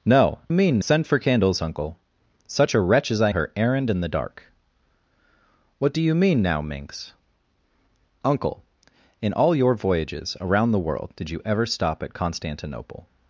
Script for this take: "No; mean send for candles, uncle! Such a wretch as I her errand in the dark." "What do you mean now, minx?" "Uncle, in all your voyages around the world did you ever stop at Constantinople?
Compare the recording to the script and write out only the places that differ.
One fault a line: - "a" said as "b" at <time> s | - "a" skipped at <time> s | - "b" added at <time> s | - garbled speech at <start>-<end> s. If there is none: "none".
none